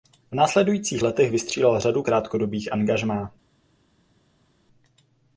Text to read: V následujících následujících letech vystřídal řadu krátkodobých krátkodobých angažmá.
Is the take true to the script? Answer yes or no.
no